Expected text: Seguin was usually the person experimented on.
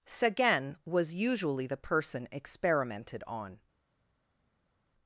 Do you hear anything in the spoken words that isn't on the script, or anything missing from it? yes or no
no